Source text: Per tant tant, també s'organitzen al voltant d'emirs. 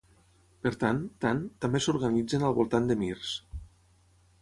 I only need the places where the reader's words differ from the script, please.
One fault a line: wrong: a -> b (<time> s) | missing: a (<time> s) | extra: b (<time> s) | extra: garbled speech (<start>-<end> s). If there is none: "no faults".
no faults